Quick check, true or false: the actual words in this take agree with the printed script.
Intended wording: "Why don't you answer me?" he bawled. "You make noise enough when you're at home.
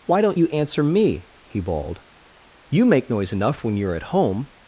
true